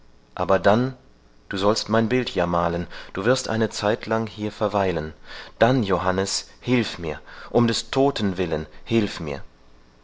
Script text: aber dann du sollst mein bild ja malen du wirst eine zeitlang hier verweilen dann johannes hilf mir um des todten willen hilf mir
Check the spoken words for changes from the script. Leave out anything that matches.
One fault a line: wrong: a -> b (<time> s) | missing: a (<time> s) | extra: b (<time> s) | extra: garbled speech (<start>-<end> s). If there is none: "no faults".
no faults